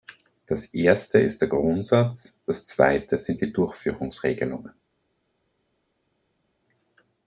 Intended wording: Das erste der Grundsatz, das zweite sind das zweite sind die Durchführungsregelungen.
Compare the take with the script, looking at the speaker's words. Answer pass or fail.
fail